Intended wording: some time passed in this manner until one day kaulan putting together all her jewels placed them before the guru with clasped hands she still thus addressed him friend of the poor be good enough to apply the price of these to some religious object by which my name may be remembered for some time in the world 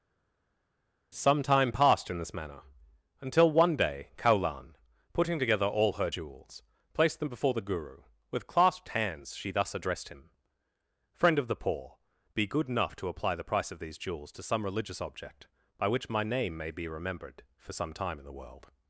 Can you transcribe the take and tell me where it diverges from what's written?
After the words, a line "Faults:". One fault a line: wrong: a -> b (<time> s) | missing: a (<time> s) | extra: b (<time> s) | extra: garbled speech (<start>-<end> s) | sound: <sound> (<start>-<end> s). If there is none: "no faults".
some time passed in this manner until one day kaulan putting together all her jewels placed them before the guru with clasped hands she thus addressed him friend of the poor be good enough to apply the price of these jewels to some religious object by which my name may be remembered for some time in the world
Faults:
missing: still (9.5 s)
extra: jewels (14.0 s)